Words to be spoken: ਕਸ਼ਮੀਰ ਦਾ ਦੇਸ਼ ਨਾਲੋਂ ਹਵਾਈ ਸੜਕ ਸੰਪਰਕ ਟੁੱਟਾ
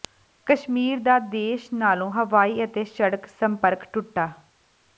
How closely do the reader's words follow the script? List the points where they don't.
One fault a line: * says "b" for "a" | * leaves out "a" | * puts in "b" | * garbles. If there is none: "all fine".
* puts in "ਅਤੇ"